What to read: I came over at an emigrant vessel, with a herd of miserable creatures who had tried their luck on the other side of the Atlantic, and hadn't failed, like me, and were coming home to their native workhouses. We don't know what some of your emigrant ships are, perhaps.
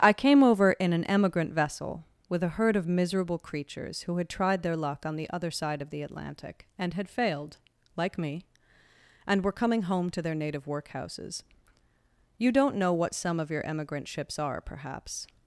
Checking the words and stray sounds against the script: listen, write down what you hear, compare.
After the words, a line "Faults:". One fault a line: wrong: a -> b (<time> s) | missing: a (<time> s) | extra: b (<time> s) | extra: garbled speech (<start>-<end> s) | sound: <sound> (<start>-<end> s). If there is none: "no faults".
I came over in an emigrant vessel, with a herd of miserable creatures who had tried their luck on the other side of the Atlantic, and had failed, like me, and were coming home to their native workhouses. You don't know what some of your emigrant ships are, perhaps.
Faults:
wrong: at -> in (0.7 s)
wrong: hadn't -> had (6.9 s)
wrong: We -> You (12.4 s)